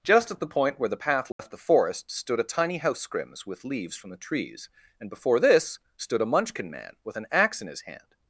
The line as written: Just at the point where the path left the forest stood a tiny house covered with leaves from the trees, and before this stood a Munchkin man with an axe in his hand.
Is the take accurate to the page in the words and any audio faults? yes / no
no